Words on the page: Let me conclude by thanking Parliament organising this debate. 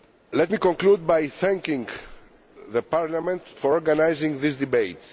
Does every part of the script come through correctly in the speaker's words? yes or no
no